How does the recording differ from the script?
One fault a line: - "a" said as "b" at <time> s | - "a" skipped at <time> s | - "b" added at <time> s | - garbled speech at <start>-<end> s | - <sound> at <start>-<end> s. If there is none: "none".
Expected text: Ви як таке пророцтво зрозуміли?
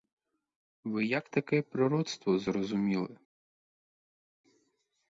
none